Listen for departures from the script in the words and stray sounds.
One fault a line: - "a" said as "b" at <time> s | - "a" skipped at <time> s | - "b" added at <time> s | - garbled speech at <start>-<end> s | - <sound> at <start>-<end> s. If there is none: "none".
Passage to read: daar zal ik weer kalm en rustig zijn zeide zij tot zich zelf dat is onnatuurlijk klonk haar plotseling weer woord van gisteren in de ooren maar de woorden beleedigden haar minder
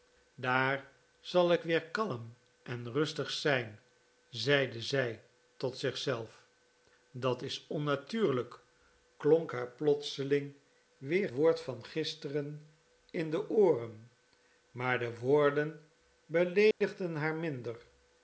- dropout at 16.7-16.8 s